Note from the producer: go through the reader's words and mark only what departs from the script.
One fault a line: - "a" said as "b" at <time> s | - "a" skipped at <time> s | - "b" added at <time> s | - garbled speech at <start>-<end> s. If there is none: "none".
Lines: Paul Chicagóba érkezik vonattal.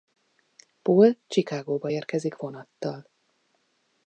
none